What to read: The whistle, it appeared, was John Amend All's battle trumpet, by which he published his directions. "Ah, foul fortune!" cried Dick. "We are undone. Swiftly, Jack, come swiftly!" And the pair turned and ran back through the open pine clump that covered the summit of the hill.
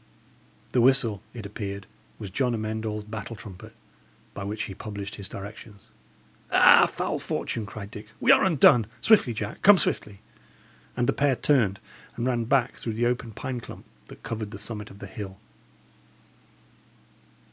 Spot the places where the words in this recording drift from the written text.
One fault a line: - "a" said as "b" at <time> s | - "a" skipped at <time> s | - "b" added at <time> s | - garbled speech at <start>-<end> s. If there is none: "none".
none